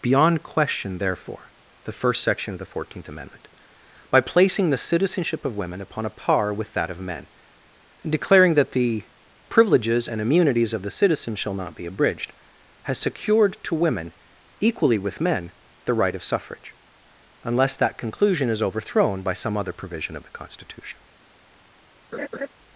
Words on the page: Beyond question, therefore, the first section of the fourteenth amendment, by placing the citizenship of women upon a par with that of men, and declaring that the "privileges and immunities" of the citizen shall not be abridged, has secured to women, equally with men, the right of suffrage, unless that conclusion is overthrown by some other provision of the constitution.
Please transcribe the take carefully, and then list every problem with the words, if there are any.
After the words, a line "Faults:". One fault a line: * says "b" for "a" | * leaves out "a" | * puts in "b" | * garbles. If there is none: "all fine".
Beyond question, therefore, the first section of the fourteenth amendment, by placing the citizenship of women upon a par with that of men, and declaring that the "privileges and immunities" of the citizen shall not be abridged, has secured to women, equally with men, the right of suffrage, unless that conclusion is overthrown by some other provision of the constitution.
Faults:
all fine